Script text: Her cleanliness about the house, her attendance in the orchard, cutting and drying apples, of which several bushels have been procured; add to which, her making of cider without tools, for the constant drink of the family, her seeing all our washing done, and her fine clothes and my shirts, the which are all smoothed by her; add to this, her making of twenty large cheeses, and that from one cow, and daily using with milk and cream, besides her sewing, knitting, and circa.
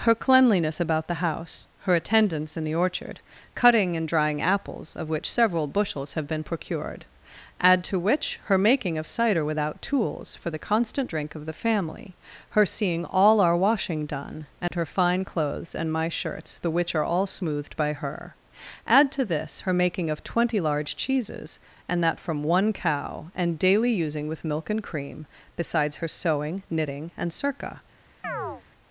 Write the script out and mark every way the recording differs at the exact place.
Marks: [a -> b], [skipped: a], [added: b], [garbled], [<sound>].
Her cleanliness about the house, her attendance in the orchard, cutting and drying apples, of which several bushels have been procured; add to which, her making of cider without tools, for the constant drink of the family, her seeing all our washing done, and [dropout] her fine clothes and my shirts, the which are all smoothed by her; add to this, her making of twenty large cheeses, and that from one cow, and daily using with milk and cream, besides her sewing, knitting, and circa. [chirp]